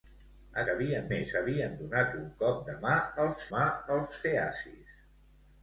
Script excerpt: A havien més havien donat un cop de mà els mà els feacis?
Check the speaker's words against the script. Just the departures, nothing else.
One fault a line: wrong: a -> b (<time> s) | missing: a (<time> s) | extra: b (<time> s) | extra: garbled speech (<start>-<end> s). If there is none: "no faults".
no faults